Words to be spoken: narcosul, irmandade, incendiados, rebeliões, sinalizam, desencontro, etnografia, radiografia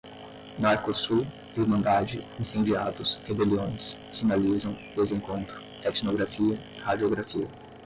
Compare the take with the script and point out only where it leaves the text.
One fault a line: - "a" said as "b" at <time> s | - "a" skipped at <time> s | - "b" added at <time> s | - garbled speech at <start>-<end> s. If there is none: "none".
none